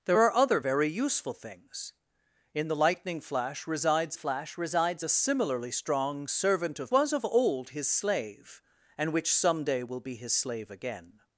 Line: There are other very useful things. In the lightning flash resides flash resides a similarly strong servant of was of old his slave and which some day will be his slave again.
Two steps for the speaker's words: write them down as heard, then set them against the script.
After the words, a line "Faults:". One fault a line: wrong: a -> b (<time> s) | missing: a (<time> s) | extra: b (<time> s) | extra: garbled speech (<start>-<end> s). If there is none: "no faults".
There are other very useful things. In the lightning flash resides flash resides a similarly strong servant of was of old his slave and which some day will be his slave again.
Faults:
no faults